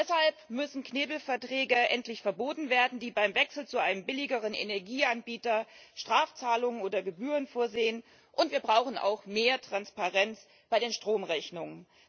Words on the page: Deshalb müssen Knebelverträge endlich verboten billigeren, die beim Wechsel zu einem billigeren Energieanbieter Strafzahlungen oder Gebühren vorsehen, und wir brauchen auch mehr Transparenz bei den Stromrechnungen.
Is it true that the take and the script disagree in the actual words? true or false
true